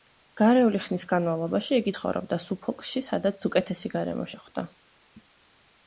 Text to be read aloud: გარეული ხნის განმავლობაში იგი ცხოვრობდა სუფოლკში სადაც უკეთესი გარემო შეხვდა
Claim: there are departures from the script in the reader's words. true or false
false